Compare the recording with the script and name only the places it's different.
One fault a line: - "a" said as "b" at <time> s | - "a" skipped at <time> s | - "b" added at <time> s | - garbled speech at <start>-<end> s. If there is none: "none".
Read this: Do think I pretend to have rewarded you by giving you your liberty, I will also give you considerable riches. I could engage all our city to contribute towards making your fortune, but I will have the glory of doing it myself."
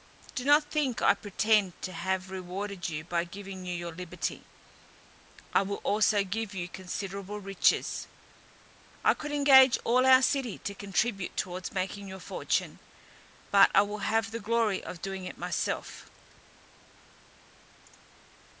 - "not" added at 0.4 s